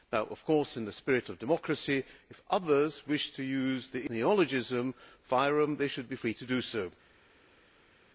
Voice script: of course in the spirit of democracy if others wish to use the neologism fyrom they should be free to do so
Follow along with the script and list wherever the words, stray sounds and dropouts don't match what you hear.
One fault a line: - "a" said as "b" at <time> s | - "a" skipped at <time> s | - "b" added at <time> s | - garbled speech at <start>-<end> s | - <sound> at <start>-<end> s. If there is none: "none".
none